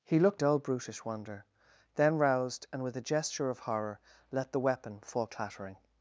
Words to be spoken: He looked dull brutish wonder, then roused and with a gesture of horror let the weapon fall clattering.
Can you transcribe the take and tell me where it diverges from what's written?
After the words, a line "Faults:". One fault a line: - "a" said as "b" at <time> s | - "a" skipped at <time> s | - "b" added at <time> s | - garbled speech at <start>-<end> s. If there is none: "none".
He looked dull brutish wonder, then roused and with a gesture of horror let the weapon fall clattering.
Faults:
none